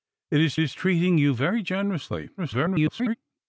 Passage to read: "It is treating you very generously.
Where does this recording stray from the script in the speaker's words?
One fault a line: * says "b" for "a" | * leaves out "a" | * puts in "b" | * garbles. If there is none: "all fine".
* puts in "is"
* garbles